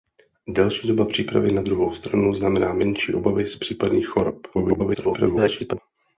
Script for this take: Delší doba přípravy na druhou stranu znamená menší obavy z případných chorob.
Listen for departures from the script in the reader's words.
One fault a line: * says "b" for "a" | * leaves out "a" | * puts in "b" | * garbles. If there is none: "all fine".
* garbles